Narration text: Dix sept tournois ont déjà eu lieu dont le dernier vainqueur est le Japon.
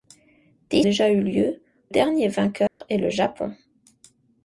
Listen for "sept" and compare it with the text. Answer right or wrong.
wrong